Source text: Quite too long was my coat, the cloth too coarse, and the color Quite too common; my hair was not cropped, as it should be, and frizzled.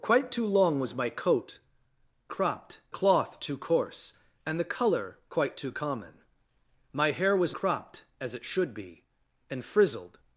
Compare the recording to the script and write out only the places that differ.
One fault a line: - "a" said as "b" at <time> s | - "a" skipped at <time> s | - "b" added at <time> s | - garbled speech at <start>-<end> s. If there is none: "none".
- "the" said as "cropped" at 2.3 s
- "not" skipped at 7.5 s